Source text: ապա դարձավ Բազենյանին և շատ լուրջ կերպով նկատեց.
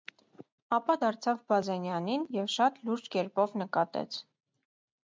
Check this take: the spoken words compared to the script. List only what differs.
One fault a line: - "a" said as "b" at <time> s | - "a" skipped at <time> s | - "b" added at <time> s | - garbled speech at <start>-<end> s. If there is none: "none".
none